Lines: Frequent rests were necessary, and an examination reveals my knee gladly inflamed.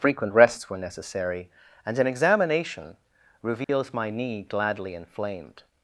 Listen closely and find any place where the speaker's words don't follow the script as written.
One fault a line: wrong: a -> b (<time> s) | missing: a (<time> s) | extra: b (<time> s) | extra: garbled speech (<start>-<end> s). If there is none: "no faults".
no faults